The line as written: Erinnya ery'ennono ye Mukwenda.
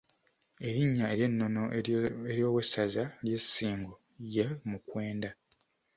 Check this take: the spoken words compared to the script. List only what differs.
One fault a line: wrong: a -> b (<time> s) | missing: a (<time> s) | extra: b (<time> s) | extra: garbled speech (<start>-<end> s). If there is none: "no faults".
extra: ery'owessaza ly'e Ssingo (2.3 s)